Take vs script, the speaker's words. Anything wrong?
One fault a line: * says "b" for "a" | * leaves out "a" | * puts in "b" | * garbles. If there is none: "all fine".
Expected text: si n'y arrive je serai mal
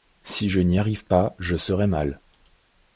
* puts in "je"
* puts in "pas"